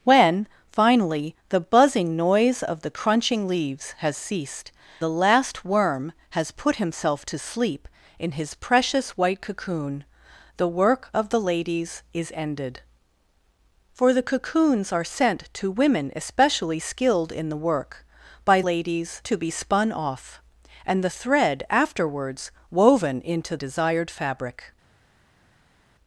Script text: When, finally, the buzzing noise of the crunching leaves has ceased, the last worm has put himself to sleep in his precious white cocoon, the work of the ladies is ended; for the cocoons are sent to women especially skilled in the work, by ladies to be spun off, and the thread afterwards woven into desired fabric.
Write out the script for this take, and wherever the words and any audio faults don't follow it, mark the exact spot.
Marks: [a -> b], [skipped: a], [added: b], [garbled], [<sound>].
When, finally, the buzzing noise of the crunching leaves has ceased, the last worm has put himself to sleep in his precious white cocoon, the work of the ladies is ended; for the cocoons are sent to women especially skilled in the work, by ladies to be spun off, and the thread afterwards woven into desired fabric.